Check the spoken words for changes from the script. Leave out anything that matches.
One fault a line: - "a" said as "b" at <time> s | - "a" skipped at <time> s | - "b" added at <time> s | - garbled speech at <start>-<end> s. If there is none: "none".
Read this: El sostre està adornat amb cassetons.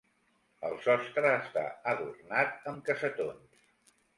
none